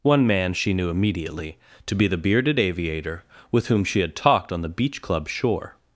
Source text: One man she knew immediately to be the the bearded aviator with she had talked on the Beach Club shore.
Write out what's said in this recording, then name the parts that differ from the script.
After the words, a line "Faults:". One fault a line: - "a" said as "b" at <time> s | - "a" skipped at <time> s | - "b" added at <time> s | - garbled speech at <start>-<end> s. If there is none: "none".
One man she knew immediately to be the bearded aviator with whom she had talked on the Beach Club shore.
Faults:
- "the" skipped at 2.2 s
- "whom" added at 3.7 s